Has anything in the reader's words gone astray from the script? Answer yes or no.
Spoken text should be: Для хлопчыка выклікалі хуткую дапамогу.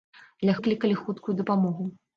yes